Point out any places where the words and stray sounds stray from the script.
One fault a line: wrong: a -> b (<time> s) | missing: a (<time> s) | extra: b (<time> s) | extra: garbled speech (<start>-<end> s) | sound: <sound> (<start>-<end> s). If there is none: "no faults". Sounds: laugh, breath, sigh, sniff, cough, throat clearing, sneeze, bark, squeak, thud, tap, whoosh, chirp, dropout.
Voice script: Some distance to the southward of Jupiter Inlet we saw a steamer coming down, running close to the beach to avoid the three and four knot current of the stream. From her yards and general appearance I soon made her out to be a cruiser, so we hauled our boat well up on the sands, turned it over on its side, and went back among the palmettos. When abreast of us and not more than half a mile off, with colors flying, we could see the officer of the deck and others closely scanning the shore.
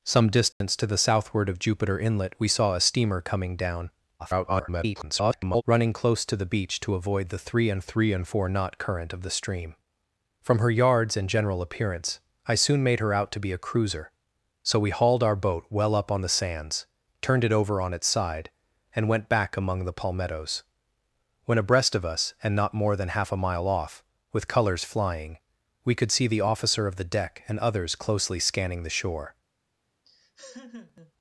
sound: dropout (0.5-0.6 s)
extra: garbled speech (4.2-5.6 s)
extra: three and (7.8 s)
sound: laugh (30.0-31.1 s)